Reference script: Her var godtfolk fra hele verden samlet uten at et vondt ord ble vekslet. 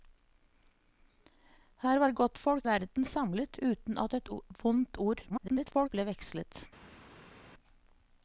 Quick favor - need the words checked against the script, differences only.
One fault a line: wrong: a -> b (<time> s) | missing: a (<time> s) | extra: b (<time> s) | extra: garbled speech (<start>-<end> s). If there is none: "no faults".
missing: fra hele (2.6 s)
extra: garbled speech (5.3-5.9 s)